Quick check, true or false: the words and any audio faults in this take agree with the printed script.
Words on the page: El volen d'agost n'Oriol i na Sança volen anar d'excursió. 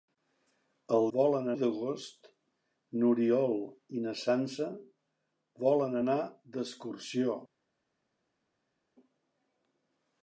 true